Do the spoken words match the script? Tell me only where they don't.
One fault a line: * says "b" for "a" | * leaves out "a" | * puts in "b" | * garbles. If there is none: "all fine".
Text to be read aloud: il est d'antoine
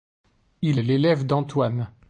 * puts in "l'élève"